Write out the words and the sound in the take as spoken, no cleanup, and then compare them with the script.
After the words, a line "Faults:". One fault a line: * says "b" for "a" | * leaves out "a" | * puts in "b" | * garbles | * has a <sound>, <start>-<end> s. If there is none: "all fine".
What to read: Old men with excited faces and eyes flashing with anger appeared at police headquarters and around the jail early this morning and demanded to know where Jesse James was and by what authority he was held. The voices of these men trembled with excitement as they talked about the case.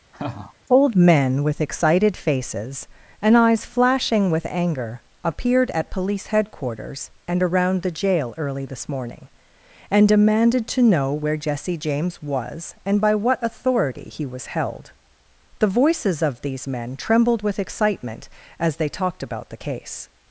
Old men with excited faces and eyes flashing with anger appeared at police headquarters and around the jail early this morning and demanded to know where Jesse James was and by what authority he was held. The voices of these men trembled with excitement as they talked about the case.
Faults:
* has a laugh, 0.1-0.5 s